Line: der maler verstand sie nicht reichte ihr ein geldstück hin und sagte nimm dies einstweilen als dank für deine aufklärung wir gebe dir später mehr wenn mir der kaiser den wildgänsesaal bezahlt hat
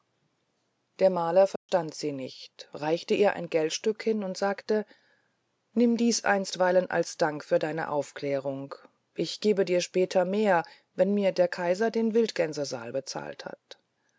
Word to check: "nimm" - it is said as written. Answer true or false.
true